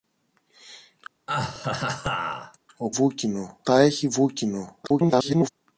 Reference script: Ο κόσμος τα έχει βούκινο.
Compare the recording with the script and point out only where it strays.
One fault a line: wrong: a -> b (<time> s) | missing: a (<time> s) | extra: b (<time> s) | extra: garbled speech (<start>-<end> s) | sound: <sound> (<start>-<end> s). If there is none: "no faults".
sound: laugh (1.3-2.6 s)
wrong: κόσμος -> βούκινο (2.9 s)
extra: garbled speech (4.8-5.5 s)